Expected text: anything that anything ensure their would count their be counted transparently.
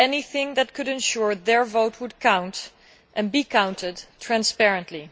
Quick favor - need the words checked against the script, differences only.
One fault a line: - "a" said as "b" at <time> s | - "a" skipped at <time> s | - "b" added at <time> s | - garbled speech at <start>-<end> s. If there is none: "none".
- "anything" said as "could" at 0.7 s
- "vote" added at 1.6 s
- "their" said as "and" at 3.1 s